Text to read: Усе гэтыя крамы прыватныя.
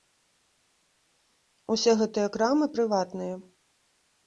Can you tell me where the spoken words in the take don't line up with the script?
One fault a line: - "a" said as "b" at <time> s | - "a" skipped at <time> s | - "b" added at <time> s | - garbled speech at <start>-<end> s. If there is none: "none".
none